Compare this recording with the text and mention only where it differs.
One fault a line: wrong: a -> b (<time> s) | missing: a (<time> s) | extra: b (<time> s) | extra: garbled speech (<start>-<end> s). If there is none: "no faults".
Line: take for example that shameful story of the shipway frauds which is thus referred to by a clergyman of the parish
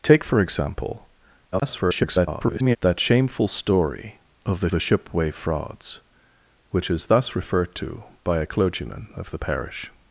extra: garbled speech (1.5-2.8 s)
extra: the (4.7 s)